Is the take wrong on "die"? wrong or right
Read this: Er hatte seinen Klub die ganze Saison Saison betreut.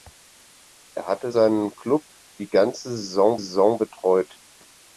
right